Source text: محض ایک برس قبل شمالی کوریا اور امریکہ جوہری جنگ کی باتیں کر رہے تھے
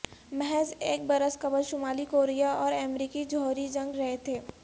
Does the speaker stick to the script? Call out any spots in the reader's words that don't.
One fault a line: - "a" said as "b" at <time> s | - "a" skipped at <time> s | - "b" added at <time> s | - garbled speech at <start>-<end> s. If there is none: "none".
- "کی باتیں کر" skipped at 3.9 s